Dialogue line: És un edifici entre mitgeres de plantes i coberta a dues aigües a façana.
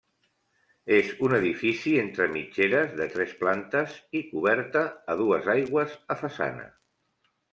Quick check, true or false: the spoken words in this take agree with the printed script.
false